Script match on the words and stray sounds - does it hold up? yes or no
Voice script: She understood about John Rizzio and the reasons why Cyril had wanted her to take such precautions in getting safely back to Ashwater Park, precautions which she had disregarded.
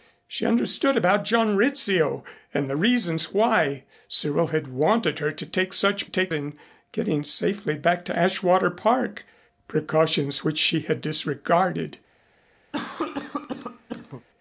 no